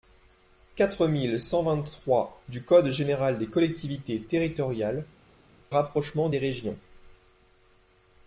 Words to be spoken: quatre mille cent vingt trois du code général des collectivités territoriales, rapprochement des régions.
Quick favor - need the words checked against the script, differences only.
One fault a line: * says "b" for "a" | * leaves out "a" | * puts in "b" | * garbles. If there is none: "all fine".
all fine